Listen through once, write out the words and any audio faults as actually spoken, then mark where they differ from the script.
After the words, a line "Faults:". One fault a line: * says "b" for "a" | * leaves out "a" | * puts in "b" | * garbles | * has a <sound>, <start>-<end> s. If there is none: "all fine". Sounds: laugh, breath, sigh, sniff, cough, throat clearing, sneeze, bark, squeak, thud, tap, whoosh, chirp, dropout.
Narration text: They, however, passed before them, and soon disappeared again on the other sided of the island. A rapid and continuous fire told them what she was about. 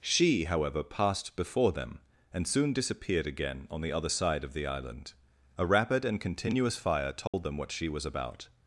She, however, passed before them, and soon disappeared again on the other side of the island. A rapid and continuous fire told them what she was about.
Faults:
* says "She" for "They"
* says "side" for "sided"
* has a dropout, 7.3-7.3 s